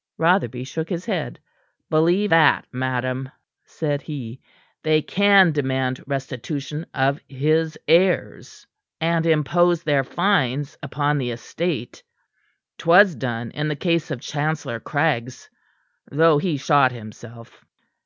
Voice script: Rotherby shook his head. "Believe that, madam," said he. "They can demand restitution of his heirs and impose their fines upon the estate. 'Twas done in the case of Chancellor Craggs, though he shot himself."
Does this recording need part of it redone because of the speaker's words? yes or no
no